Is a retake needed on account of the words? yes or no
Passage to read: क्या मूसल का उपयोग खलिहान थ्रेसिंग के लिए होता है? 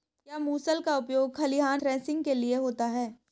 no